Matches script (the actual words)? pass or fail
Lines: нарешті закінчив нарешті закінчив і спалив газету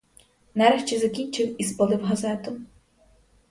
fail